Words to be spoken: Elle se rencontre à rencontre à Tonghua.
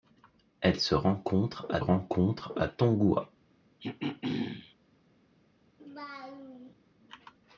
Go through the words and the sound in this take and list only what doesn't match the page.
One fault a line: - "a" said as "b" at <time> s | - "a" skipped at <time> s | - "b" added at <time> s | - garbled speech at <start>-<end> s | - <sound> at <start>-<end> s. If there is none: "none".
- throat clearing at 3.8-4.7 s
- laugh at 5.8-6.7 s